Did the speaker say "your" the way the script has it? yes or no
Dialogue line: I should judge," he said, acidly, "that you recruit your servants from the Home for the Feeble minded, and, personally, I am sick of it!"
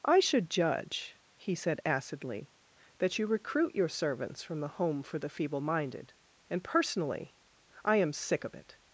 yes